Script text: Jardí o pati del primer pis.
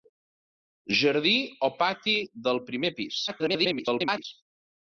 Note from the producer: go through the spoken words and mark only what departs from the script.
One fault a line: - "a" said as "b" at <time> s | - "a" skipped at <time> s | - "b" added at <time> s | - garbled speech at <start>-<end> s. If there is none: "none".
- garbled speech at 3.3-4.2 s